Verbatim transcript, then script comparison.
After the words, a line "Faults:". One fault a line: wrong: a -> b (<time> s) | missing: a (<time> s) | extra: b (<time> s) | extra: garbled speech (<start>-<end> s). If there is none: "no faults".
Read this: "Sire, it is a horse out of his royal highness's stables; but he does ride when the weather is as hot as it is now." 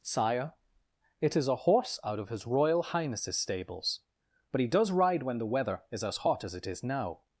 "Sire, it is a horse out of his royal highness's stables; but he does ride when the weather is as hot as it is now."
Faults:
no faults